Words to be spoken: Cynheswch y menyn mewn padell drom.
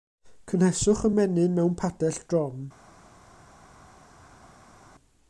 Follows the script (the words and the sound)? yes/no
yes